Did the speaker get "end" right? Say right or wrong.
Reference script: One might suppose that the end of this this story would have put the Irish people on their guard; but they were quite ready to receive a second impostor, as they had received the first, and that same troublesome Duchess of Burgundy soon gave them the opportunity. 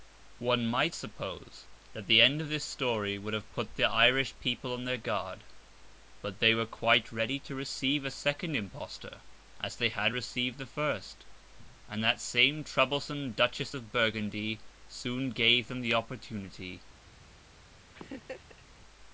right